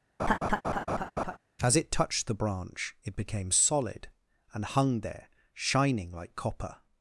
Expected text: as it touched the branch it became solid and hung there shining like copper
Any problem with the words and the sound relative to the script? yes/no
yes